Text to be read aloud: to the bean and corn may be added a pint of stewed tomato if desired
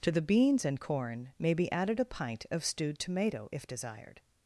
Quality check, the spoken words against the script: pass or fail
fail